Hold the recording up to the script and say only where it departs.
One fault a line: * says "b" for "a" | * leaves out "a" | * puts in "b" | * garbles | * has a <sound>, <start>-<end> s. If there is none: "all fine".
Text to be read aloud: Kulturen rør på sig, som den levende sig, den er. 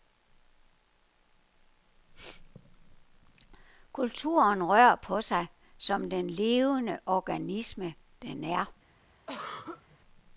* says "organisme" for "sig"
* has a throat clearing, 9.3-10.0 s